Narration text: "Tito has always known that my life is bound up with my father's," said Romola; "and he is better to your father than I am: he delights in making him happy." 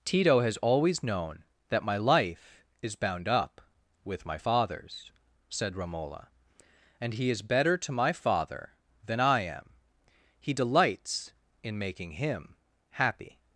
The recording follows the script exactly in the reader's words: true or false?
false